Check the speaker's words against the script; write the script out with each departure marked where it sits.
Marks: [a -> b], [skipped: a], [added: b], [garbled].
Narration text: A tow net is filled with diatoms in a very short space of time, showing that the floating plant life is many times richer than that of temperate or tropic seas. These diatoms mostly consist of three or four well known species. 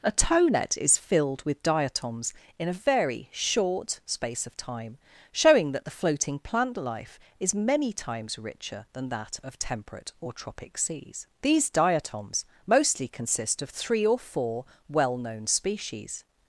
A tow net is filled with diatoms in a very short space of time, showing that the floating plant life is many times richer than that of temperate or tropic seas. These diatoms mostly consist of three or four well known species.